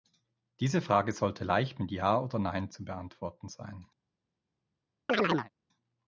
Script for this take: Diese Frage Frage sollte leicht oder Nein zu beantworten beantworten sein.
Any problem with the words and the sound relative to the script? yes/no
yes